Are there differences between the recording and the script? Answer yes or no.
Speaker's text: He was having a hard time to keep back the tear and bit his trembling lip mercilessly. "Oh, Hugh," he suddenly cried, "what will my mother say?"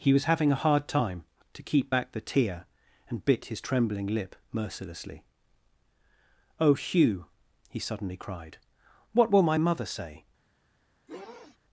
no